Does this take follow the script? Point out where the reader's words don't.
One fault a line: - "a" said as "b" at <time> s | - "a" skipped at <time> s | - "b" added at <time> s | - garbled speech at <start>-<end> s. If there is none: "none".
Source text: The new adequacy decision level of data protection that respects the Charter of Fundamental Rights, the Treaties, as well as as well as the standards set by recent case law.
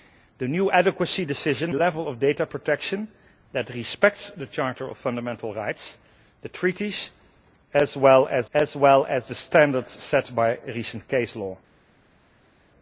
none